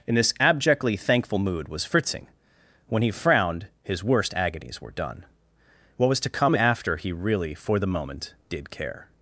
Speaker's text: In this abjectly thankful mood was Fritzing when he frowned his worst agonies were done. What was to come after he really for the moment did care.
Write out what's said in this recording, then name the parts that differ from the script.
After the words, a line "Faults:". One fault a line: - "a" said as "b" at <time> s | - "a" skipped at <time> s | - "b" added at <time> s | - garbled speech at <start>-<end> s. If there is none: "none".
In this abjectly thankful mood was Fritzing when he frowned his worst agonies were done. What was to come after he really for the moment did care.
Faults:
none